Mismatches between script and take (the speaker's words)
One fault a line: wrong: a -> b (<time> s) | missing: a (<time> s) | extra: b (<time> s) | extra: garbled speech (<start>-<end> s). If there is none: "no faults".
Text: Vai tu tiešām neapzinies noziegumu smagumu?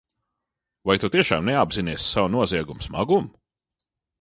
extra: savu (2.1 s)